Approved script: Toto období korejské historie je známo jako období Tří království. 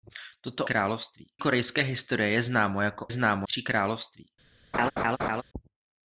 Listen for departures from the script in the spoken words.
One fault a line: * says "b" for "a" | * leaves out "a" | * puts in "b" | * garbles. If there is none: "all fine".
* says "království" for "období"
* says "známo" for "období"